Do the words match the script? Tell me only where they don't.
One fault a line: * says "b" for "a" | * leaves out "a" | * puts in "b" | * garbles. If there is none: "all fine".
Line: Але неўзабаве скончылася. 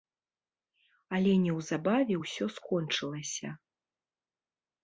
* puts in "ўсё"